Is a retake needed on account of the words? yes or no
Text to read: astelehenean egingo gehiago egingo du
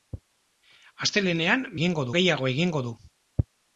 no